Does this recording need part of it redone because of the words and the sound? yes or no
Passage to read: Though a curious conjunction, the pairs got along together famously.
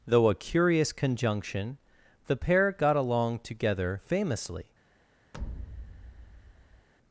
yes